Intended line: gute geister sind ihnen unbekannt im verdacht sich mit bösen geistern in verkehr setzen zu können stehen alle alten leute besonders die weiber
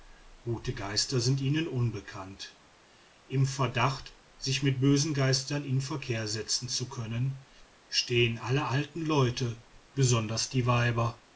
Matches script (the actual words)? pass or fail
pass